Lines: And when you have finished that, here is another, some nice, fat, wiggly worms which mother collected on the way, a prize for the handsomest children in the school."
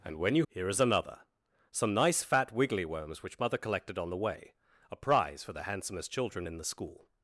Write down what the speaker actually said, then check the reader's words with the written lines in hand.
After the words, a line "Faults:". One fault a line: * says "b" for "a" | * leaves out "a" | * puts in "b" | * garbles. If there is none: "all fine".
And when you here is another, some nice, fat, wiggly worms which mother collected on the way, a prize for the handsomest children in the school."
Faults:
* leaves out "have finished that"